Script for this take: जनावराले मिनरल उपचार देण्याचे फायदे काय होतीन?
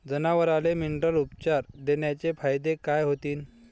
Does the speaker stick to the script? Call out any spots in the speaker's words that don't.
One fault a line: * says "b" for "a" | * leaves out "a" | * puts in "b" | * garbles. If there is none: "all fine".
all fine